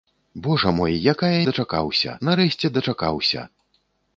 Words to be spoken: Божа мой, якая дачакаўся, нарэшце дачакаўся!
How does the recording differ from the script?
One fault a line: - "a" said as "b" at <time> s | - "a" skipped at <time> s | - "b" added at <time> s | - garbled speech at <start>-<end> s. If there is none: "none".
none